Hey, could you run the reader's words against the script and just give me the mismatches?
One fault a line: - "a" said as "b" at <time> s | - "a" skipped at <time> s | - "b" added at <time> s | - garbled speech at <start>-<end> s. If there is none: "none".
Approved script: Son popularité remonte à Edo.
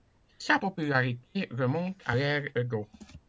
- "Son" said as "Sa" at 0.4 s
- "l'ère" added at 2.1 s